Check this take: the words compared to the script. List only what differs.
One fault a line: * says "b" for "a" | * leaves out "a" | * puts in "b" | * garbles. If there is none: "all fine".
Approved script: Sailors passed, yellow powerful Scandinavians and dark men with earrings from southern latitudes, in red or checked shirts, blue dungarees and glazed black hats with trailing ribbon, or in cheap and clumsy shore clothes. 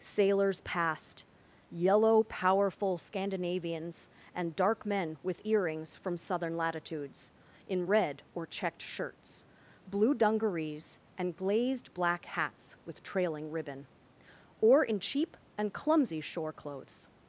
all fine